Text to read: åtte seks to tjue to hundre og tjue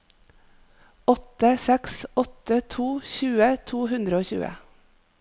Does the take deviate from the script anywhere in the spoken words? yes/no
yes